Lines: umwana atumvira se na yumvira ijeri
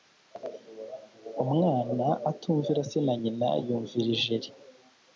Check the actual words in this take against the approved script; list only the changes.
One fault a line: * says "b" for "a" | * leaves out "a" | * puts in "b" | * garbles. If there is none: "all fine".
* puts in "nyina"